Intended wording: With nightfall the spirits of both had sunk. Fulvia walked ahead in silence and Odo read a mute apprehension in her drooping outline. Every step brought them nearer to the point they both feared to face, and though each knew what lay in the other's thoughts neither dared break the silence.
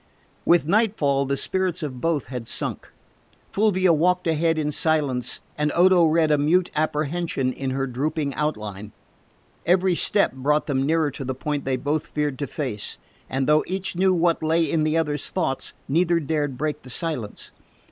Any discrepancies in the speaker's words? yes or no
no